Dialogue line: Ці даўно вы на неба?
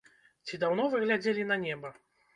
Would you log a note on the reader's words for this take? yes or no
yes